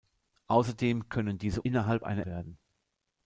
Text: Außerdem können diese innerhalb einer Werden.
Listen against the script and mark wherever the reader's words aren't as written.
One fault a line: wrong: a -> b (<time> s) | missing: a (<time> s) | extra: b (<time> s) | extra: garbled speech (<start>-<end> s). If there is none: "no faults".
no faults